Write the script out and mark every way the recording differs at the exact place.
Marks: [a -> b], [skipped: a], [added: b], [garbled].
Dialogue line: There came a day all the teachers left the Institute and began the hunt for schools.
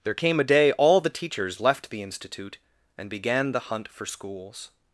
There came a day all the teachers left the Institute and began the hunt for schools.